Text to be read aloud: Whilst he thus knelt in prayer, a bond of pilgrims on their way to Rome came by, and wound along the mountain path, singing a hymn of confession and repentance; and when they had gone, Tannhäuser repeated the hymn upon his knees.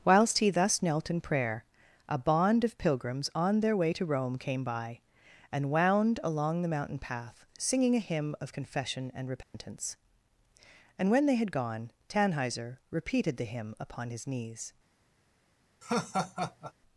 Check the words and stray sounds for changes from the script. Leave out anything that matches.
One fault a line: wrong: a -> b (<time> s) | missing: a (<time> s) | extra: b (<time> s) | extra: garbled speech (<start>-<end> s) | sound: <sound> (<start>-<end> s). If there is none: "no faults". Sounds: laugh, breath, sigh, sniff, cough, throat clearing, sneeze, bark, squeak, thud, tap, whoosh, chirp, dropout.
sound: dropout (9.4-9.5 s)
sound: laugh (15.8-16.7 s)